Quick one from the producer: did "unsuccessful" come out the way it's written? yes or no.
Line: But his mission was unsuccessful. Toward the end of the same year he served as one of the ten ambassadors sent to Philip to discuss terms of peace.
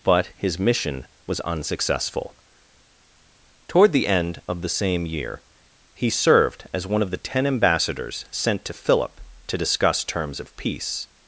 yes